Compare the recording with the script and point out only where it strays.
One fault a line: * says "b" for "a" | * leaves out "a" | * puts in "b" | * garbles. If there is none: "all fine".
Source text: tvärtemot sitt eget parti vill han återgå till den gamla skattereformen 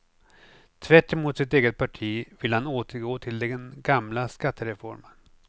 all fine